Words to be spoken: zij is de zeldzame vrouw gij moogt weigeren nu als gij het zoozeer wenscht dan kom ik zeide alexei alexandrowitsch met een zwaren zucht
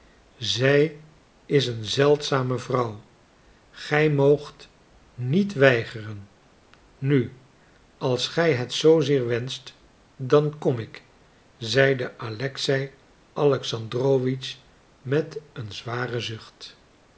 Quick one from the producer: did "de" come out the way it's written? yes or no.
no